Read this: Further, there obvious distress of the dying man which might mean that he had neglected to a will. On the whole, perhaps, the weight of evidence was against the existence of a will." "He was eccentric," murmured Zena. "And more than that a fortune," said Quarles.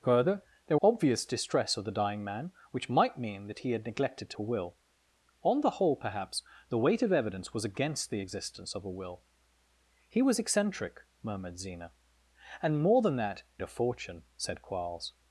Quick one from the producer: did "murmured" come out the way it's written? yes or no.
yes